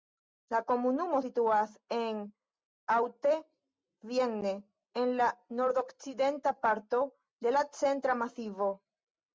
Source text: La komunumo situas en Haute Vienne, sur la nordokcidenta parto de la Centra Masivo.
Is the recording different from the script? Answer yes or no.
yes